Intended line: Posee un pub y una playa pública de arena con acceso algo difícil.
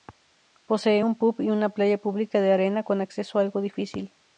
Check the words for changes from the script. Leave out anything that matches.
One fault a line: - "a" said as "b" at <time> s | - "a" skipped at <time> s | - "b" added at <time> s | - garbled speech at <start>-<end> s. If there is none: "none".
none